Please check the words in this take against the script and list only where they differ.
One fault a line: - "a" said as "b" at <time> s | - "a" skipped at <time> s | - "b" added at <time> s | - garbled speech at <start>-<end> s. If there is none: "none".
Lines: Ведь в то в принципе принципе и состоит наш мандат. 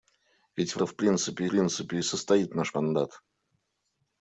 none